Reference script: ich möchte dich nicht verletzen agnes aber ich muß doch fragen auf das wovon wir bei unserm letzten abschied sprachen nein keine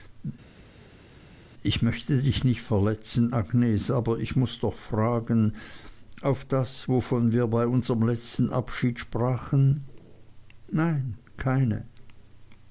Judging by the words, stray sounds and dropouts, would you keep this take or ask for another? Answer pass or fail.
pass